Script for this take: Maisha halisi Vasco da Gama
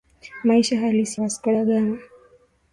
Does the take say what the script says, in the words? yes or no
yes